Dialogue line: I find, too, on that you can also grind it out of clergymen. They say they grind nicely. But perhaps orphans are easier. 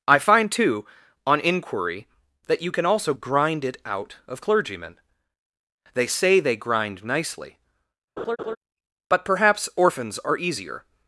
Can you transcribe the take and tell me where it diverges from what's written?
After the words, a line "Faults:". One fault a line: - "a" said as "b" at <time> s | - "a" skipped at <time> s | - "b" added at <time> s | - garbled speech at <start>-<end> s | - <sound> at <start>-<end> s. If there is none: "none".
I find, too, on inquiry, that you can also grind it out of clergymen. They say they grind nicely. But perhaps orphans are easier.
Faults:
- "inquiry" added at 1.4 s
- laugh at 8.2-8.6 s